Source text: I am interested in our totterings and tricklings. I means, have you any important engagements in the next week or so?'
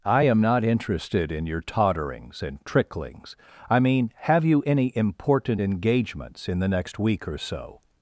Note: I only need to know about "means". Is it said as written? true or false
false